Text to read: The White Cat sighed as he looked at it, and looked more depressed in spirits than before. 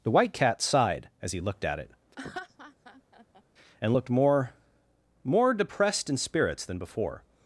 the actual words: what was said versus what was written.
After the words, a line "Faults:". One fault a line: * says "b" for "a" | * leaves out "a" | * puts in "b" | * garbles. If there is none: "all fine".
The White Cat sighed as he looked at it, and looked more more depressed in spirits than before.
Faults:
* puts in "more"